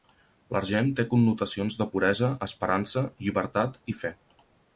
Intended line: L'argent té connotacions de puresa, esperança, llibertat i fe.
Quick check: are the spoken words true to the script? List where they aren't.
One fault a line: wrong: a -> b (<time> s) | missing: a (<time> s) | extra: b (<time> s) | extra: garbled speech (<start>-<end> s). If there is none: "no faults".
no faults